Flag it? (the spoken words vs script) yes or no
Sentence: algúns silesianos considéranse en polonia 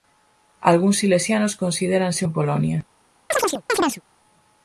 no